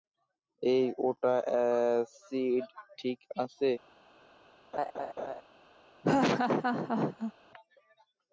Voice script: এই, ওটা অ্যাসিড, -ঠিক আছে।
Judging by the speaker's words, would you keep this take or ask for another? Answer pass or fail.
pass